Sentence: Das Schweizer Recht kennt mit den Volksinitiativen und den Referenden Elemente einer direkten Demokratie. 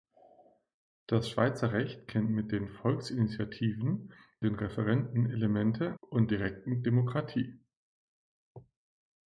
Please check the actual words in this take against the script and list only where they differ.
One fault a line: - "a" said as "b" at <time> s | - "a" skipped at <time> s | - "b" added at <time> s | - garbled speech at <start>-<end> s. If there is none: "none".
- "und" skipped at 4.1 s
- "einer" said as "und" at 6.0 s